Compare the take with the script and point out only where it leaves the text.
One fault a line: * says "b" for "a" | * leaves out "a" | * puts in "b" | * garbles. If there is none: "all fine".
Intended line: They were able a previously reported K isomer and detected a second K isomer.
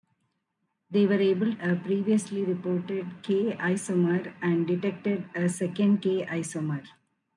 all fine